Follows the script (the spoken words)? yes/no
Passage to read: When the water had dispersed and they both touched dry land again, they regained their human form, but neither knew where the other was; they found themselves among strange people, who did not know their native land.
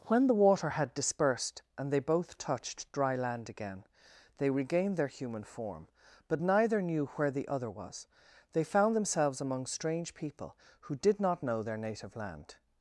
yes